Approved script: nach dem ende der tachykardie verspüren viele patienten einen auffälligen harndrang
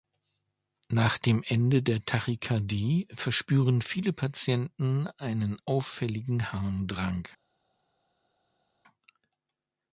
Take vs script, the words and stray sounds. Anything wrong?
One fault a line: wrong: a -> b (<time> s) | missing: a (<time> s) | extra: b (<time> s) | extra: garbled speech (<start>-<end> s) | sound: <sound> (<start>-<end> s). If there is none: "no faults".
no faults